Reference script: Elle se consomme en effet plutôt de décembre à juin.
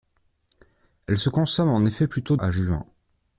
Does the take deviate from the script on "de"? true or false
true